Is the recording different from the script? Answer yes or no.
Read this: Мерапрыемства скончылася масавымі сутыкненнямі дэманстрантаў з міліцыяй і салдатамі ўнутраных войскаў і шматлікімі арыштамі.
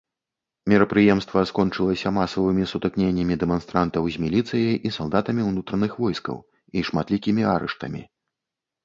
no